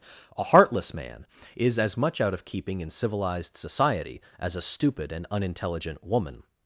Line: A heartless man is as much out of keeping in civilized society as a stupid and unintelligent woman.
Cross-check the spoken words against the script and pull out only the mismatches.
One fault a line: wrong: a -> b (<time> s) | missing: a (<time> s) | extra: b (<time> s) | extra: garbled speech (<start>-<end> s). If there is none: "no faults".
no faults